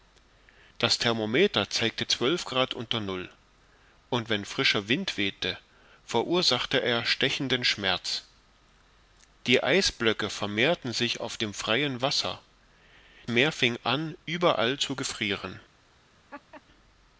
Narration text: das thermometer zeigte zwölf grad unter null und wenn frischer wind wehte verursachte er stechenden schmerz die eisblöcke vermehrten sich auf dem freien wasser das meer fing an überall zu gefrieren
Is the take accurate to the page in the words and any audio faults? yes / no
no